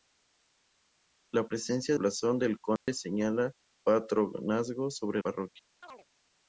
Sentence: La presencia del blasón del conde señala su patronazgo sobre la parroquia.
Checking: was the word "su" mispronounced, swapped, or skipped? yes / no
yes